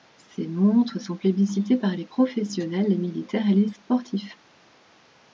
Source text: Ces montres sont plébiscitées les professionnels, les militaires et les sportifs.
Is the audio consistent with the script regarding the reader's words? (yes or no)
no